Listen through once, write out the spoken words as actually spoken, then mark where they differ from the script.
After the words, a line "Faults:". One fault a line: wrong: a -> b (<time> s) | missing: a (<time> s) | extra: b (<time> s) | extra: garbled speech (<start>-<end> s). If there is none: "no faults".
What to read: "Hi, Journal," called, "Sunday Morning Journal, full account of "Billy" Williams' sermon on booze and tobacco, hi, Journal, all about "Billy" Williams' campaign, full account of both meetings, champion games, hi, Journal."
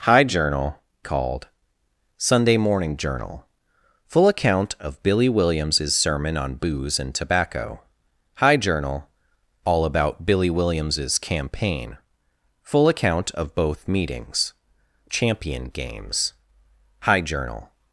"Hi, Journal," called, "Sunday Morning Journal, full account of "Billy" Williams' sermon on booze and tobacco, hi, Journal, all about "Billy" Williams' campaign, full account of both meetings, champion games, hi, Journal."
Faults:
no faults